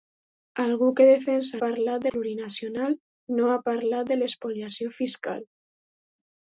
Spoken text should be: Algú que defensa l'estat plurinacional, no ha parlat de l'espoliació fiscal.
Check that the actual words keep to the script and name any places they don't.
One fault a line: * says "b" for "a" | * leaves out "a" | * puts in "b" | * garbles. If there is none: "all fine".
* says "parlat" for "l'estat"